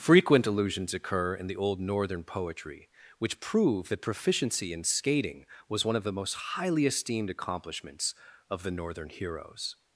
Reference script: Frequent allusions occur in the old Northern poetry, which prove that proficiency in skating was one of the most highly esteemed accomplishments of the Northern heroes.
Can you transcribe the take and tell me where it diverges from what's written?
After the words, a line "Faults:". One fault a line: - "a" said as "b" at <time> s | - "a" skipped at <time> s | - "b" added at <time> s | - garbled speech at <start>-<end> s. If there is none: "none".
Frequent allusions occur in the old Northern poetry, which prove that proficiency in skating was one of the most highly esteemed accomplishments of the Northern heroes.
Faults:
none